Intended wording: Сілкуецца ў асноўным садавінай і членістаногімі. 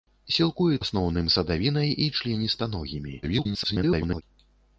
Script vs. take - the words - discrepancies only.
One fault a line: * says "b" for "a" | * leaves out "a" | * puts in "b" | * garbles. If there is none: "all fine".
* leaves out "ў"
* garbles